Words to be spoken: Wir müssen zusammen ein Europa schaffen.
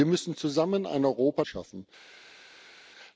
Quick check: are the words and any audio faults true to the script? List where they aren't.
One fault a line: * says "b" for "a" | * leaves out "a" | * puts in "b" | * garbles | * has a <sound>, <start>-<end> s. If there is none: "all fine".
all fine